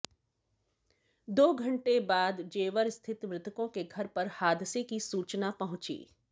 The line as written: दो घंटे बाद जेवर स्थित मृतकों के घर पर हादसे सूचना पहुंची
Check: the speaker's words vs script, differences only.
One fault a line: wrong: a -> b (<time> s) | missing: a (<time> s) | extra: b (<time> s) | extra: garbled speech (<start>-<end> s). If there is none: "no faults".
extra: की (4.8 s)